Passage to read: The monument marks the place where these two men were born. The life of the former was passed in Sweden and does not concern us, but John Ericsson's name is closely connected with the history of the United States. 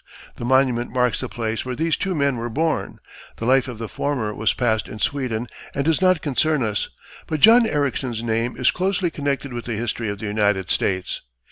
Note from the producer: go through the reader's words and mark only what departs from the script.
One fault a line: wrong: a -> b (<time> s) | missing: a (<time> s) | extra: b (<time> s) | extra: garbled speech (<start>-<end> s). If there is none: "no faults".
no faults